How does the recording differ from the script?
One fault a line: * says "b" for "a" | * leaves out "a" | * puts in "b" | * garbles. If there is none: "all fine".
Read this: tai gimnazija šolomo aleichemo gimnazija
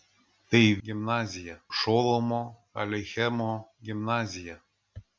all fine